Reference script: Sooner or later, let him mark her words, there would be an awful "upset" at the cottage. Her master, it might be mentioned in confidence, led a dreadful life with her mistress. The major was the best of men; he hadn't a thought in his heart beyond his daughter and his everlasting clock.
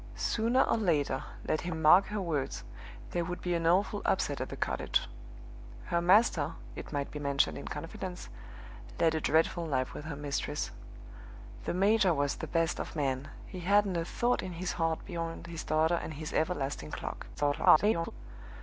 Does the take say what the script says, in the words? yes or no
no